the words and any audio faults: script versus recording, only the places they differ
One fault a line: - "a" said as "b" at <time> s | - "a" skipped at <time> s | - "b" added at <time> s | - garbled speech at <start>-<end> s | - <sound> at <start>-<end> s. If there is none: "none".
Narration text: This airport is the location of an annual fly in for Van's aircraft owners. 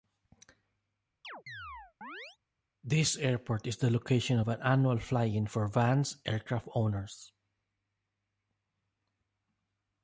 - chirp at 1.2-2.4 s